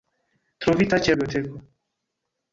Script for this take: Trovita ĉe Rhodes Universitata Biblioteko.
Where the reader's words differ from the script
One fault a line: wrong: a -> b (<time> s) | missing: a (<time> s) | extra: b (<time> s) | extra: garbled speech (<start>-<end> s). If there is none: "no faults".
missing: Rhodes Universitata (1.1 s)